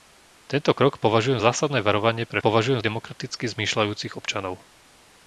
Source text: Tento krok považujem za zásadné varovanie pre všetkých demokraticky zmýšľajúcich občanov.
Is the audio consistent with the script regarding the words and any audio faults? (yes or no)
no